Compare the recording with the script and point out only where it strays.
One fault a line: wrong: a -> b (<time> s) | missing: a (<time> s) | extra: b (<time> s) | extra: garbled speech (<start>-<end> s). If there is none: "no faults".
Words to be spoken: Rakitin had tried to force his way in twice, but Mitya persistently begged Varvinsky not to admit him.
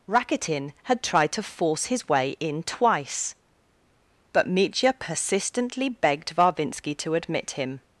missing: not (7.0 s)